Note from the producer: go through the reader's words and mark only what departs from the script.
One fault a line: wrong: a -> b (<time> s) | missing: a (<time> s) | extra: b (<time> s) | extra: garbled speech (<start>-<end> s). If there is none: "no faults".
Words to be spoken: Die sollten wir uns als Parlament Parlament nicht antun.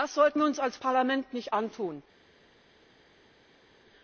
wrong: Die -> Das (0.0 s)
missing: Parlament (1.3 s)